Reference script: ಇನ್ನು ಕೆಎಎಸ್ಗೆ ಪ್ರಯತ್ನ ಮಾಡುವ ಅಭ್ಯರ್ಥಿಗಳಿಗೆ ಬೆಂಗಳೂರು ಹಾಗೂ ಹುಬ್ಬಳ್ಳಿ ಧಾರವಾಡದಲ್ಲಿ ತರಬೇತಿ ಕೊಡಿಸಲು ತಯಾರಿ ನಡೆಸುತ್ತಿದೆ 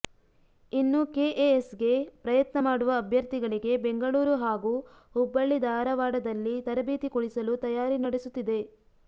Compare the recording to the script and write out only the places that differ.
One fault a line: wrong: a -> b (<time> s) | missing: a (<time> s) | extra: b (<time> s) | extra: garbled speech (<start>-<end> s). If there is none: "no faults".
no faults